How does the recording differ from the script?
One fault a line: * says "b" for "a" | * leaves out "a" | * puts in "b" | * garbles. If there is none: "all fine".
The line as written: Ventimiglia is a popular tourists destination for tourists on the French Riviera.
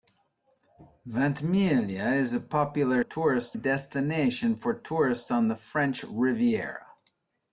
all fine